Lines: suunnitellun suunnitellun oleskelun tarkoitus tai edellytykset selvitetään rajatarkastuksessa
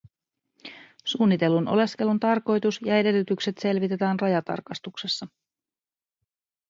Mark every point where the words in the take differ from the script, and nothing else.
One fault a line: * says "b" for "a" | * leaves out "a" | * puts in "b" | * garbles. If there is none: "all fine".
* leaves out "suunnitellun"
* says "ja" for "tai"